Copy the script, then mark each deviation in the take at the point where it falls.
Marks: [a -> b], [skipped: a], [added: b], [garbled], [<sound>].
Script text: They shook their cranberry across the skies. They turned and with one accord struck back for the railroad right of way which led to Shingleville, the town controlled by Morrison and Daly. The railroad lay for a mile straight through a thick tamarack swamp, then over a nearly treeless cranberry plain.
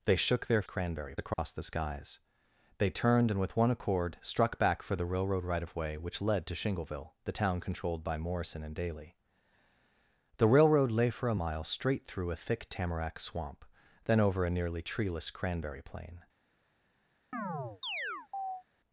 They shook their cranberry across [dropout] the skies. They turned and with one accord struck back for the railroad right of way which led to Shingleville, the town controlled by Morrison and Daly. The railroad lay for a mile straight through a thick tamarack swamp, then over a nearly treeless cranberry plain. [chirp]